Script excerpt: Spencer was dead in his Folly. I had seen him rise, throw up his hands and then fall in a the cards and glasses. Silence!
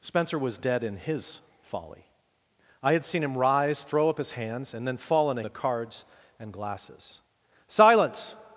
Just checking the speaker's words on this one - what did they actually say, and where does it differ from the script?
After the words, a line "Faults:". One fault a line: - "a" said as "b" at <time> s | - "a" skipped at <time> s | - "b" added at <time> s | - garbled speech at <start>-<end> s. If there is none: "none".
Spencer was dead in his Folly. I had seen him rise, throw up his hands and then fall in a the cards and glasses. Silence!
Faults:
none